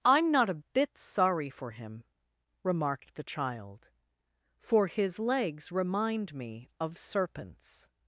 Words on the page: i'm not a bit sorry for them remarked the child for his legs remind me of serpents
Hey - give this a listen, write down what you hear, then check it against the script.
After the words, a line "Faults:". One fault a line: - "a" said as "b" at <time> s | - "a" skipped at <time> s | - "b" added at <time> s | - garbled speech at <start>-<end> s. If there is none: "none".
i'm not a bit sorry for him remarked the child for his legs remind me of serpents
Faults:
- "them" said as "him" at 1.7 s